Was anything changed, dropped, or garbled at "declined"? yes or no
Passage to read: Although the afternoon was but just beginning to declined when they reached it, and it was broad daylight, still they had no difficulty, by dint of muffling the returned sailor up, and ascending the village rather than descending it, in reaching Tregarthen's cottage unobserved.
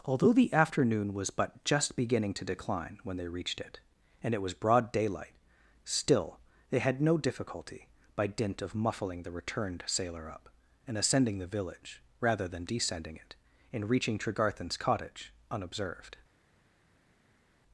yes